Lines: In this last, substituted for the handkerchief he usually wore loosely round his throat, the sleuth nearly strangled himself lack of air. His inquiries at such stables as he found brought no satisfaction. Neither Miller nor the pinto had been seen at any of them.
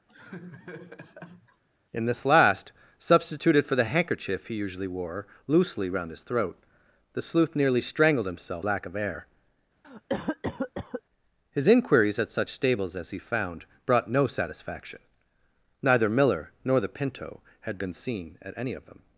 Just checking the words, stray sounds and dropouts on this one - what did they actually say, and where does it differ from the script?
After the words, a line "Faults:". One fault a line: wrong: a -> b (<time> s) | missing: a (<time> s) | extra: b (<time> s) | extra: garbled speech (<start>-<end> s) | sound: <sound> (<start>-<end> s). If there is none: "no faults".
In this last, substituted for the handkerchief he usually wore loosely round his throat, the sleuth nearly strangled himself lack of air. His inquiries at such stables as he found brought no satisfaction. Neither Miller nor the pinto had been seen at any of them.
Faults:
sound: laugh (0.1-1.6 s)
sound: cough (9.8-11.0 s)